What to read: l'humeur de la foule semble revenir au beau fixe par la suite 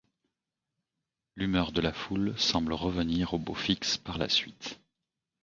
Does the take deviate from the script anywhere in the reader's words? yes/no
no